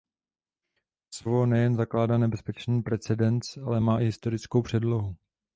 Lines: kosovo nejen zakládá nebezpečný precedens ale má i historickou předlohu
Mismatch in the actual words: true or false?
false